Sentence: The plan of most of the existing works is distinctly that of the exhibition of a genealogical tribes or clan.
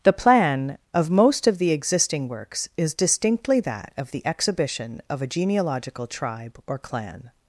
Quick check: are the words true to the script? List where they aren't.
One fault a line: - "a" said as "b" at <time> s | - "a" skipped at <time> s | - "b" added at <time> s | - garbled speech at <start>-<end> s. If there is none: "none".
- "tribes" said as "tribe" at 6.1 s